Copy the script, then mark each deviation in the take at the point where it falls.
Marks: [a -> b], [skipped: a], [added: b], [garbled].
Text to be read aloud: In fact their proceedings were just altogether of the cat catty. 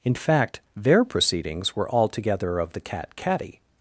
In fact their proceedings were [skipped: just] altogether of the cat catty.